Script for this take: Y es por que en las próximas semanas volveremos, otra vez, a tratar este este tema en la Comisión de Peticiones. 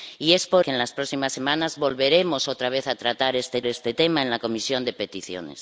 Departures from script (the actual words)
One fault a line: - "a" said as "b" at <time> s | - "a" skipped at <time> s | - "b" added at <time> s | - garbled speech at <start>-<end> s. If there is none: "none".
none